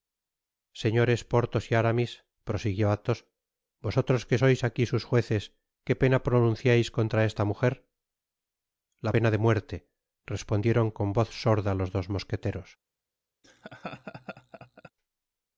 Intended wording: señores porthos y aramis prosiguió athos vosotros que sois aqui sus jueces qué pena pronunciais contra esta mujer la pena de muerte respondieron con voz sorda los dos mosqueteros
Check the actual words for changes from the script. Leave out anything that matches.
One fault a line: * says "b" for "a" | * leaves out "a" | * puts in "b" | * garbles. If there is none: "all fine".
all fine